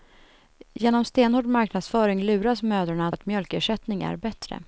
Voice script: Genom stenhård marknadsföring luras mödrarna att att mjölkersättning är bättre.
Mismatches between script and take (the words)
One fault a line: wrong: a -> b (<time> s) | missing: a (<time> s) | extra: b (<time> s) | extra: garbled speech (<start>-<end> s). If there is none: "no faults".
no faults